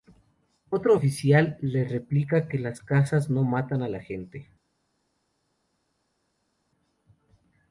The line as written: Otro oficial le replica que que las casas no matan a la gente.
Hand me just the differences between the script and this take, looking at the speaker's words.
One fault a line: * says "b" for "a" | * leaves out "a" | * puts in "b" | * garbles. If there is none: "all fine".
* leaves out "que"